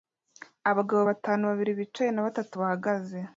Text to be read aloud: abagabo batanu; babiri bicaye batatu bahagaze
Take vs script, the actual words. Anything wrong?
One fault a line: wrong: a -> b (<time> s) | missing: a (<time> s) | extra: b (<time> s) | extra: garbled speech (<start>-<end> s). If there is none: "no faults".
extra: na (2.1 s)